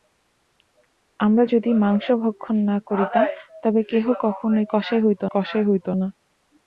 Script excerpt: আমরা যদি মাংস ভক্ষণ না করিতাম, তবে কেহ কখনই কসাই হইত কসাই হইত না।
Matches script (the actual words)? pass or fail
pass